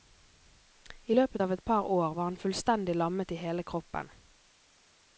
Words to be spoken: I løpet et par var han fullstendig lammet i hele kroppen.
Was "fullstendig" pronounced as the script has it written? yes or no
yes